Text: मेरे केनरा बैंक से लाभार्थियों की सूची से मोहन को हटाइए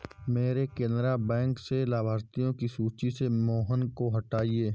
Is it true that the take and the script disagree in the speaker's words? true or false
false